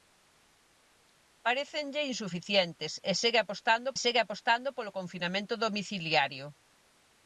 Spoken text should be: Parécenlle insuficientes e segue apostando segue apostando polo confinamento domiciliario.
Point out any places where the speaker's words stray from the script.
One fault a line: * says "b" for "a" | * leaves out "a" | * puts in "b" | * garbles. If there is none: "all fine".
all fine